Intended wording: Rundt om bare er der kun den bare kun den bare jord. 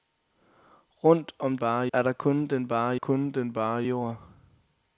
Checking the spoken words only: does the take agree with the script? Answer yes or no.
yes